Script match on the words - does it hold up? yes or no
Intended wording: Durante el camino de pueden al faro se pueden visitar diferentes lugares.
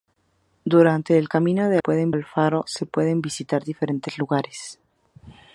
yes